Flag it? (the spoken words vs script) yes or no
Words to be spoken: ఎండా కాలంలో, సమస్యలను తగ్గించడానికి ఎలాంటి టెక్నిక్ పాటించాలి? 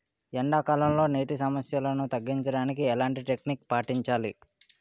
yes